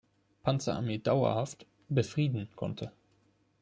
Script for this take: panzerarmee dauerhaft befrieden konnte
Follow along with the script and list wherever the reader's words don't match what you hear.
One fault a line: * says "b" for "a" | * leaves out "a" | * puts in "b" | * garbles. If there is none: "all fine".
all fine